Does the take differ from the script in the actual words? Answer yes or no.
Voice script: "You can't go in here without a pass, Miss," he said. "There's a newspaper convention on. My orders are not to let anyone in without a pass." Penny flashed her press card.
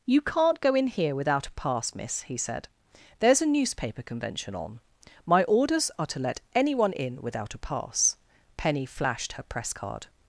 yes